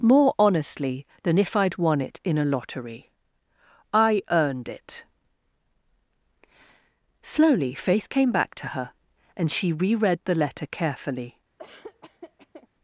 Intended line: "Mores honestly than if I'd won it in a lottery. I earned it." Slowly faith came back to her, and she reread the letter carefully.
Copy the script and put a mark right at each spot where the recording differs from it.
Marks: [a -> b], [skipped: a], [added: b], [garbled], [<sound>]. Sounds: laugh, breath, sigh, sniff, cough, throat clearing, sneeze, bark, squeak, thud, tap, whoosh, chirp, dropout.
["Mores -> More] honestly than if I'd won it in a lottery. I earned it." Slowly faith came back to her, and she reread the letter carefully. [laugh]